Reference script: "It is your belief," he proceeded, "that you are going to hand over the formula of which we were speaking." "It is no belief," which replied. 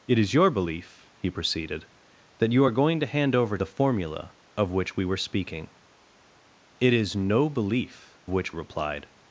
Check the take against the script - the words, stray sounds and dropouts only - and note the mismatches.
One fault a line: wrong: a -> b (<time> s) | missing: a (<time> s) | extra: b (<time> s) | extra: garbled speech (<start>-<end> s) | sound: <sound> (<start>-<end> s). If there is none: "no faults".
no faults